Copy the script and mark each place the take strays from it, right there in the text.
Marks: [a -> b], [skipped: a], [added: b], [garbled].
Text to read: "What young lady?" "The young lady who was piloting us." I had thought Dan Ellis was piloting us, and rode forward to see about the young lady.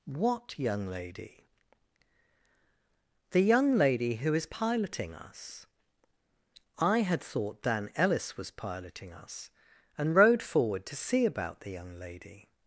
"What young lady?" "The young lady who [was -> is] piloting us." I had thought Dan Ellis was piloting us, and rode forward to see about the young lady.